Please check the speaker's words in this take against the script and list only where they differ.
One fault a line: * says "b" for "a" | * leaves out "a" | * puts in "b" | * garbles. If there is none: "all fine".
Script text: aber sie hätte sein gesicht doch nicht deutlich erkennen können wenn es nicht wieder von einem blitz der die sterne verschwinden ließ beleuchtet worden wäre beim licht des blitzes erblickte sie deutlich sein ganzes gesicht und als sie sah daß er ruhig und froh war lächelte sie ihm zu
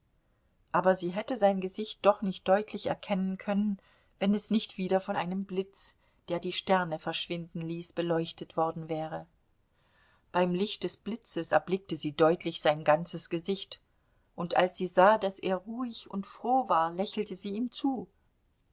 all fine